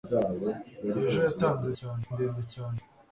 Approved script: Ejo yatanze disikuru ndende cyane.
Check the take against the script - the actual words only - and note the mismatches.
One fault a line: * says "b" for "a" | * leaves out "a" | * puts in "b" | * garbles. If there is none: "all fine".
* says "cyane" for "disikuru"